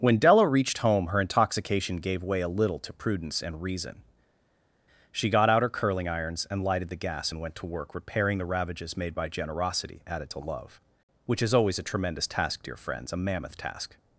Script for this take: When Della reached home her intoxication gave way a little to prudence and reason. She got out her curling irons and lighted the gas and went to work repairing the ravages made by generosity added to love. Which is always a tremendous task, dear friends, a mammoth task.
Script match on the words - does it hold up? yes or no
yes